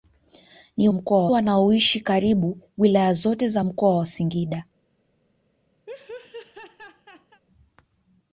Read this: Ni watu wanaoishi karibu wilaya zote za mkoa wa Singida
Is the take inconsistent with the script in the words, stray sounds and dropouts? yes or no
yes